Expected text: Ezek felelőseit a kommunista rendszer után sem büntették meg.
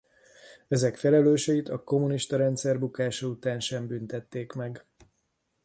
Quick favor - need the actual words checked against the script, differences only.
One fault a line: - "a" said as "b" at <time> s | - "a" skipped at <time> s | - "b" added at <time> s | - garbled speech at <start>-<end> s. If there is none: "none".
- "bukása" added at 2.8 s